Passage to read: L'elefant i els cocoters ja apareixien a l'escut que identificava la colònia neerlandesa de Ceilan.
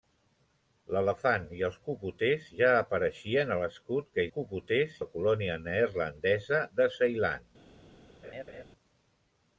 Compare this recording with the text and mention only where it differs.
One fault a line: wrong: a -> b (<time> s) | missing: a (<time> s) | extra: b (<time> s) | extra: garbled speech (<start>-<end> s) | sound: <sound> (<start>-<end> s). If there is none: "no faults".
wrong: identificava -> cocoters (4.4 s)
sound: laugh (8.2-8.6 s)